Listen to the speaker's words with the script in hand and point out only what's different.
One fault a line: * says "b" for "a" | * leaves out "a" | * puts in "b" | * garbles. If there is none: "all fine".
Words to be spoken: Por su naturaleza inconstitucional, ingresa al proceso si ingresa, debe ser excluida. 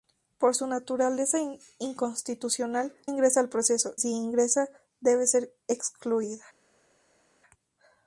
all fine